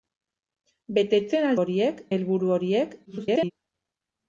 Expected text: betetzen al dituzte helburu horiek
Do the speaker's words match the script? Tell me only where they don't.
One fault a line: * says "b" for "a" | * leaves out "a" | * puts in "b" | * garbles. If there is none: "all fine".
* says "horiek" for "dituzte"
* garbles